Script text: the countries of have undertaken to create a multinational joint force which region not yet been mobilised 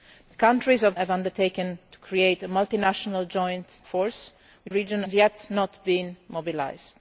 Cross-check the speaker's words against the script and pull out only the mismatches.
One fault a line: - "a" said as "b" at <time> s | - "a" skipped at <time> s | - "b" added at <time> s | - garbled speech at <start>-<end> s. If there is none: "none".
none